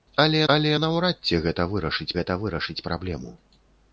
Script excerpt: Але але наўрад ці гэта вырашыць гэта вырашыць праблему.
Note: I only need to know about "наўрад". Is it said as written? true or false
true